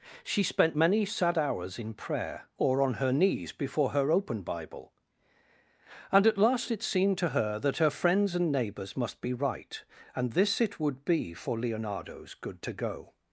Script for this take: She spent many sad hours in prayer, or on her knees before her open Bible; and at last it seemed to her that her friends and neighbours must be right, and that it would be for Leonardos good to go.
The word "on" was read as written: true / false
true